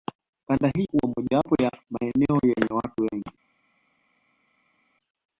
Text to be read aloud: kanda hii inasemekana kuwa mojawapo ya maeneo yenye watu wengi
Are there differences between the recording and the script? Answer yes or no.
yes